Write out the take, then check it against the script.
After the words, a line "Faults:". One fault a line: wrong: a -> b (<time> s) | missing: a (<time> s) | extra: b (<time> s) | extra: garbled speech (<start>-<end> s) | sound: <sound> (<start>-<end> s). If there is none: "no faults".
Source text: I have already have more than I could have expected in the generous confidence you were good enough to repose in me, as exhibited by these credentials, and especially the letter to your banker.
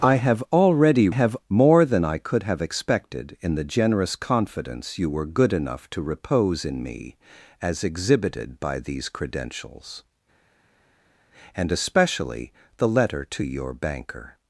I have already have more than I could have expected in the generous confidence you were good enough to repose in me, as exhibited by these credentials, and especially the letter to your banker.
Faults:
no faults